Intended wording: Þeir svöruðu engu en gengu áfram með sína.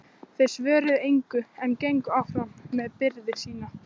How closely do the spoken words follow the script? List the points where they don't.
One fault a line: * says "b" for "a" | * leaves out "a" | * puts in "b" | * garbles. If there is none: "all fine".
* puts in "byrði"